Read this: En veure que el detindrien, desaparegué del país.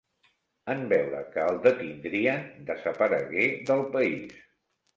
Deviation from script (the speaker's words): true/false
false